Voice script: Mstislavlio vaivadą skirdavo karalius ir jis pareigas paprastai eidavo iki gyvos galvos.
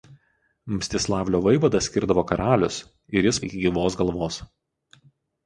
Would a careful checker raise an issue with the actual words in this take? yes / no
yes